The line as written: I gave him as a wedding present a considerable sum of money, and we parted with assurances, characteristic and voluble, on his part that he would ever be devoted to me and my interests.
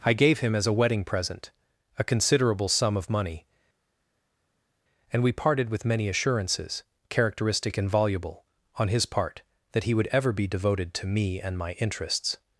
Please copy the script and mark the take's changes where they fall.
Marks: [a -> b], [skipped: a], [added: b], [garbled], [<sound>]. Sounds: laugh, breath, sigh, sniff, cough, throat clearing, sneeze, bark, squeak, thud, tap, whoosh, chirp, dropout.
I gave him as a wedding present a considerable sum of money, and we parted with [added: many] assurances, characteristic and voluble, on his part that he would ever be devoted to me and my interests.